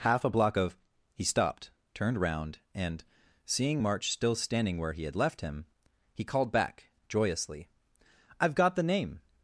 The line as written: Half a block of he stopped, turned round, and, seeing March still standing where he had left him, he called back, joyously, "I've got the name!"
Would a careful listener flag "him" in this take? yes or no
no